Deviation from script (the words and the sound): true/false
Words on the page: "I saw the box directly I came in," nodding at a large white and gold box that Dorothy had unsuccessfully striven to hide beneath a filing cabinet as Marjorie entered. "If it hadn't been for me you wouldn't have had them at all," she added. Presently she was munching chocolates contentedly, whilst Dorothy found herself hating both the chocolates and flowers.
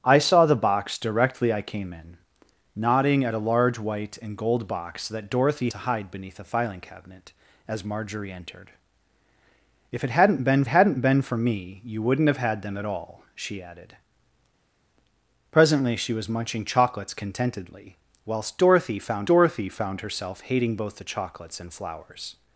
true